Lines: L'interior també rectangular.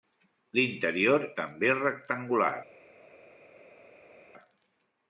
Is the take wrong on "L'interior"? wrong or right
right